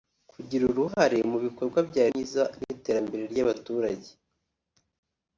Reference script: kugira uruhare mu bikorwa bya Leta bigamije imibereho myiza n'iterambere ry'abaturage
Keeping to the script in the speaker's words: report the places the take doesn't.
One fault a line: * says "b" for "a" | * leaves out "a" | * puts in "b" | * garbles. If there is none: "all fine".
* leaves out "Leta bigamije imibereho"